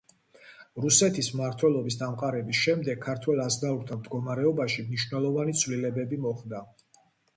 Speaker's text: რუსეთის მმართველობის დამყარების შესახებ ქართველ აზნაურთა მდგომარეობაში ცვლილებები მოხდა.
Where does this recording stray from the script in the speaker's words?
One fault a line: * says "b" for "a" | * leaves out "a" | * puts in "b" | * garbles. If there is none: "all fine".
* says "შემდეგ" for "შესახებ"
* puts in "მნიშვნელოვანი"